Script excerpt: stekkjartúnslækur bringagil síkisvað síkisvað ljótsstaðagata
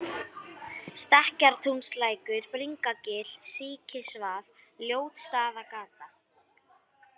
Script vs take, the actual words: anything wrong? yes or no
yes